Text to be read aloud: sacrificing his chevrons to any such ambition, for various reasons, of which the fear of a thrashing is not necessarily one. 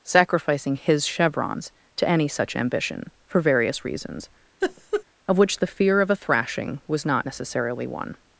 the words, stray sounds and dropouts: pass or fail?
fail